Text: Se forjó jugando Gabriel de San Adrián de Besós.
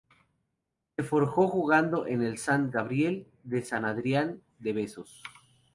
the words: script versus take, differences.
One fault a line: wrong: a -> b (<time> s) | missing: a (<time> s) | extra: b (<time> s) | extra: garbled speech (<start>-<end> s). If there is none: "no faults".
extra: en el Sant (2.1 s)